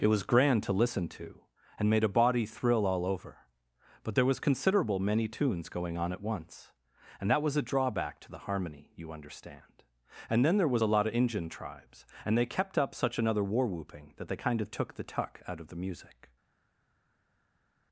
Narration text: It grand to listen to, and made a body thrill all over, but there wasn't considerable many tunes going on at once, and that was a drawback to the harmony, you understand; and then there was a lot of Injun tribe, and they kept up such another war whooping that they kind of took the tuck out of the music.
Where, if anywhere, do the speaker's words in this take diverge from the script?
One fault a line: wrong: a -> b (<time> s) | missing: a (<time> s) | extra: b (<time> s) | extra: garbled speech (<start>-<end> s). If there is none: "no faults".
extra: was (0.1 s)
wrong: wasn't -> was (4.2 s)
wrong: tribe -> tribes (11.5 s)